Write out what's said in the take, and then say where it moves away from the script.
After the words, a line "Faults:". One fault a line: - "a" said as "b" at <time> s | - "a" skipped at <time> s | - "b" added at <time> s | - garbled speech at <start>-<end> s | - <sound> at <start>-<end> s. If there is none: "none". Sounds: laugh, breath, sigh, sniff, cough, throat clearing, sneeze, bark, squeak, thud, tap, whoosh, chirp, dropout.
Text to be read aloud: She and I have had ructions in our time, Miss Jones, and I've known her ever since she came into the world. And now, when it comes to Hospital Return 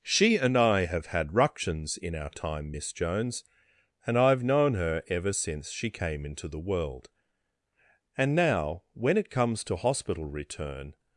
She and I have had ructions in our time, Miss Jones, and I've known her ever since she came into the world. And now, when it comes to Hospital Return
Faults:
none